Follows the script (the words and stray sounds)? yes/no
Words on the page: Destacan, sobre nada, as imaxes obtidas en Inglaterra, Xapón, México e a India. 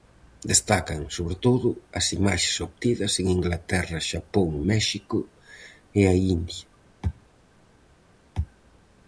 no